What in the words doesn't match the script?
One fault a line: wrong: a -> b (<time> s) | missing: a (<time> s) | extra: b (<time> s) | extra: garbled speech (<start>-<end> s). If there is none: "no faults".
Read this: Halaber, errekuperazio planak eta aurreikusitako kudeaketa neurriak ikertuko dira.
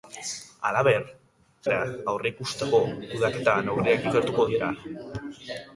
missing: errekuperazio planak (1.0 s)